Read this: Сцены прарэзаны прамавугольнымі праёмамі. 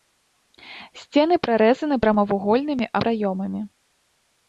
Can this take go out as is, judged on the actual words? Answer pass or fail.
pass